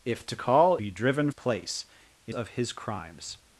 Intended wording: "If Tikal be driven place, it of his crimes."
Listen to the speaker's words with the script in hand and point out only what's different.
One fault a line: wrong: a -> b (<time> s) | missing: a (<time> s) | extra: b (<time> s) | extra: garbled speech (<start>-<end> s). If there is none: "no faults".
no faults